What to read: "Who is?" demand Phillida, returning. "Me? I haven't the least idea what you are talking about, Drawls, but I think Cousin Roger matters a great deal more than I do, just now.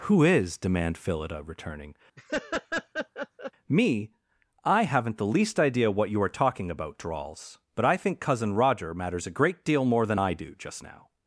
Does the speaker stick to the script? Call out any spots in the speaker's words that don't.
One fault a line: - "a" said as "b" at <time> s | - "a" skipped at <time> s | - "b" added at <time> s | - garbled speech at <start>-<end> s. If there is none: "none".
none